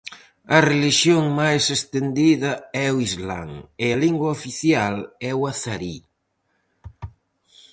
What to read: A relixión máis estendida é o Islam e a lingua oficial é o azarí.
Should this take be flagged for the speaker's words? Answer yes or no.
no